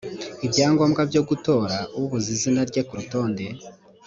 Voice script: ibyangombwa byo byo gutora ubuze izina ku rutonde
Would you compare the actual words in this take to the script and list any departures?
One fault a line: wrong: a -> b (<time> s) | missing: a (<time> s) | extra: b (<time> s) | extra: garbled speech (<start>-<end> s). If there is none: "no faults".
missing: byo (1.2 s)
extra: rye (2.7 s)